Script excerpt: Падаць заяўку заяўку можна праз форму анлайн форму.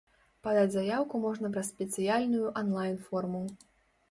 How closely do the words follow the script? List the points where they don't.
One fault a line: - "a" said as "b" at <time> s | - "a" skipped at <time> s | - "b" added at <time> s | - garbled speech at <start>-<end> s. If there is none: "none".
- "заяўку" skipped at 1.2 s
- "форму" said as "спецыяльную" at 1.7 s